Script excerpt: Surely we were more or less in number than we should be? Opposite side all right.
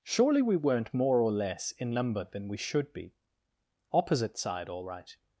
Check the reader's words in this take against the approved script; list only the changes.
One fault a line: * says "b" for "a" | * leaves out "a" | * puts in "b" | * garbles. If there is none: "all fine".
* says "weren't" for "were"